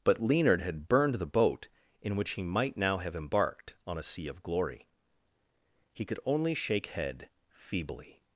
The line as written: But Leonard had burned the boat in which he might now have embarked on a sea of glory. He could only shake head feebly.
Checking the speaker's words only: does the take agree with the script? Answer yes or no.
yes